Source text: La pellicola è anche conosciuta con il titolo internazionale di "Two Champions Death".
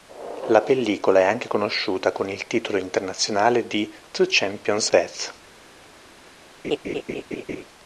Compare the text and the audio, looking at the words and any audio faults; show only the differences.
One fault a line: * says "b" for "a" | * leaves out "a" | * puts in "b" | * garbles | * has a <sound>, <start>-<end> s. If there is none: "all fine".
* has a laugh, 6.6-7.6 s